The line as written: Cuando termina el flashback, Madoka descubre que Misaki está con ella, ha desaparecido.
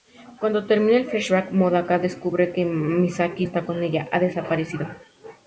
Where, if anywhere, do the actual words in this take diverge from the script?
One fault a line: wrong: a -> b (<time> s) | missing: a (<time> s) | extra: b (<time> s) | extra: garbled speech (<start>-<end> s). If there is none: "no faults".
no faults